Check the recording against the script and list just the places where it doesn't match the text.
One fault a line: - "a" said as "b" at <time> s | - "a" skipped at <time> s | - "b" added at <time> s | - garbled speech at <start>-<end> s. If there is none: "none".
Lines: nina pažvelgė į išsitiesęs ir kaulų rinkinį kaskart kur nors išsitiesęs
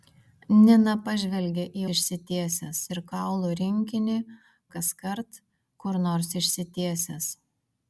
none